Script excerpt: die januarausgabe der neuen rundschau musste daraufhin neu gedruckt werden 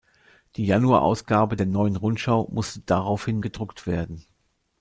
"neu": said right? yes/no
no